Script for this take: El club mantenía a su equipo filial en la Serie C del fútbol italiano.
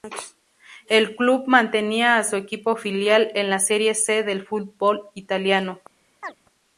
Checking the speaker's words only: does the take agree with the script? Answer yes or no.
yes